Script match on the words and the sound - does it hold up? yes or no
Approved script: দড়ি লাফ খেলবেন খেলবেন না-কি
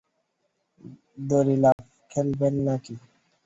no